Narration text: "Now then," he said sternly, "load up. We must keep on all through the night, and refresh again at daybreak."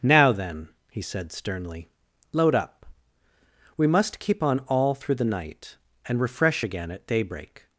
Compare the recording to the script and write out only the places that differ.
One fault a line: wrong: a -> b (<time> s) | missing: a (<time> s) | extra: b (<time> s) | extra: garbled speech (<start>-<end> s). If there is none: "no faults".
no faults